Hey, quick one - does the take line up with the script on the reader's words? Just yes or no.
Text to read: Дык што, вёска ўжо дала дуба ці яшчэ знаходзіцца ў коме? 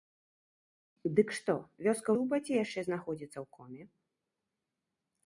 no